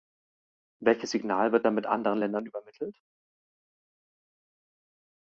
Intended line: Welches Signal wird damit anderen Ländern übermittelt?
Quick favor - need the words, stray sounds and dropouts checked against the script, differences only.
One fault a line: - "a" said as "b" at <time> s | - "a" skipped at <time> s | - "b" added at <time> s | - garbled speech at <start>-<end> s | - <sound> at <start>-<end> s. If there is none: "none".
none